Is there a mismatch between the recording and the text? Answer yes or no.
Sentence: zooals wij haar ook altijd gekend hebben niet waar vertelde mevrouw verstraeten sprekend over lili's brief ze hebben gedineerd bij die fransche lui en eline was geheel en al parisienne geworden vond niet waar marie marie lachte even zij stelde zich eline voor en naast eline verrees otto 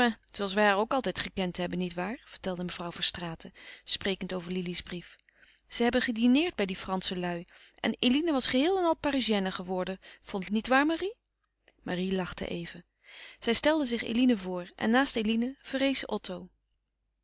no